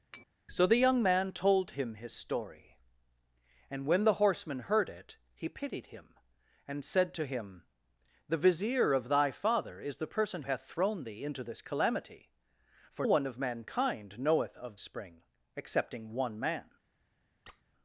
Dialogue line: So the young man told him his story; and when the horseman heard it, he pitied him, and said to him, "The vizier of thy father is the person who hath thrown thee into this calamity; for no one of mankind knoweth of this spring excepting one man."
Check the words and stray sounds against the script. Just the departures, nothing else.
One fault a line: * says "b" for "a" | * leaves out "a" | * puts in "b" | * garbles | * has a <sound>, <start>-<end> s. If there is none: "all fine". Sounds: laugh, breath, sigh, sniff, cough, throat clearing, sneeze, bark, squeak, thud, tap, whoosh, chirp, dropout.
* has a tap, 0.1-0.3 s
* leaves out "who"
* leaves out "no"
* leaves out "this"
* has a squeak, 17.5-17.6 s